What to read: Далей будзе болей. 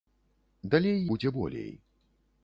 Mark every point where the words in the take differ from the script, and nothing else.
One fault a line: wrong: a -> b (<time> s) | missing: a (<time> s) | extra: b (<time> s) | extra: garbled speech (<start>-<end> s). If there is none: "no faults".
no faults